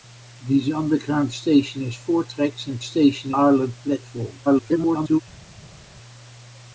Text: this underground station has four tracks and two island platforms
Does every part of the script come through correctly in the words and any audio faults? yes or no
no